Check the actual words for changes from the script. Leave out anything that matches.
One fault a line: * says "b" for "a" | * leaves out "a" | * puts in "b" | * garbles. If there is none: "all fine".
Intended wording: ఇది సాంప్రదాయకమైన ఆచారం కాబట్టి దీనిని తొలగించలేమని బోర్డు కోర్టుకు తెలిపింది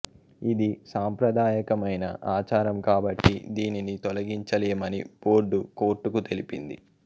all fine